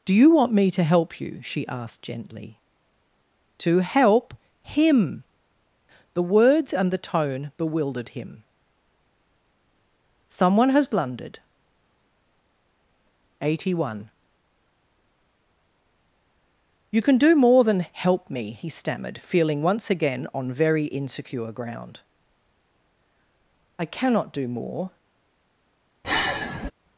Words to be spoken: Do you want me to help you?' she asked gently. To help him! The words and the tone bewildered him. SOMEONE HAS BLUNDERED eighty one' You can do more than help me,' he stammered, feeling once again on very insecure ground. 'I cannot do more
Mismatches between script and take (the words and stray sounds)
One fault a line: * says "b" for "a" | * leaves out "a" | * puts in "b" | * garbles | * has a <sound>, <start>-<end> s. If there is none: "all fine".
* has a sigh, 26.0-26.7 s